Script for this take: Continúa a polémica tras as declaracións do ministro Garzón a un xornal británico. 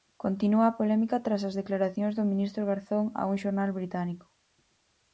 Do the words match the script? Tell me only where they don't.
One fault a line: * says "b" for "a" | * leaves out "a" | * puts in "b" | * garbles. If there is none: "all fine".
all fine